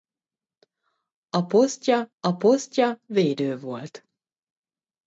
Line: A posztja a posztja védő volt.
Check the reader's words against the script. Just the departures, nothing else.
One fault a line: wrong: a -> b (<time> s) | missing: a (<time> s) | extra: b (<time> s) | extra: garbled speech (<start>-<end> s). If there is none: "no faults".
no faults